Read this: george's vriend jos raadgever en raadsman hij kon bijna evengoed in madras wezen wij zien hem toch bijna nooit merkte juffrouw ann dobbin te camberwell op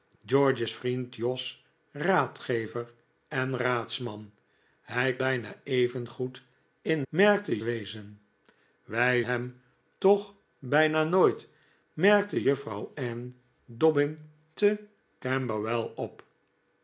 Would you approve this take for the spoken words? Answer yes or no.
no